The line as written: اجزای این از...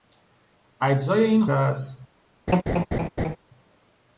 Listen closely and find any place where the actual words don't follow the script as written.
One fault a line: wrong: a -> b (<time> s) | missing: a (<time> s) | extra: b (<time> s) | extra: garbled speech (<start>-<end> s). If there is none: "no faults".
no faults